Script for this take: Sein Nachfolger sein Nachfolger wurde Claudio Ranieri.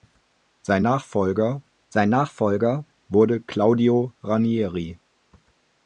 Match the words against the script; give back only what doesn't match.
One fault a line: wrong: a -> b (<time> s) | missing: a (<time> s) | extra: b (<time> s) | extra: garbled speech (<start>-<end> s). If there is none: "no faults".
no faults